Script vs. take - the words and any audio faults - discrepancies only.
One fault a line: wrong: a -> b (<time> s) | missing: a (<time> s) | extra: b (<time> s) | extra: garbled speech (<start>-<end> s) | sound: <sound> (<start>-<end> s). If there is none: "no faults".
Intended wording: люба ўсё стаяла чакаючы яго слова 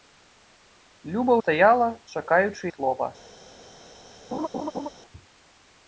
missing: ўсё (1.3 s)
missing: яго (2.6 s)
sound: laugh (4.3-4.9 s)